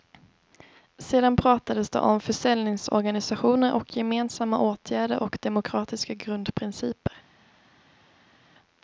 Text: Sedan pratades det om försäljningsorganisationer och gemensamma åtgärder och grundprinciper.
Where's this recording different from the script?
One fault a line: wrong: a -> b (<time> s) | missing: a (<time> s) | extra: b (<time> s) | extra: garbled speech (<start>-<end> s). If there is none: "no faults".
extra: demokratiska (5.4 s)